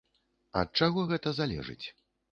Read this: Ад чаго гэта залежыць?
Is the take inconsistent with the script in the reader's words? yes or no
no